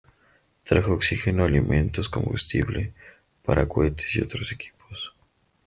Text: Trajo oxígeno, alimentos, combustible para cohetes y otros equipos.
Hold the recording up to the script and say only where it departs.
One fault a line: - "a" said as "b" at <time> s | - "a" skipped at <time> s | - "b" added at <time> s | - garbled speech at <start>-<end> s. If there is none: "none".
none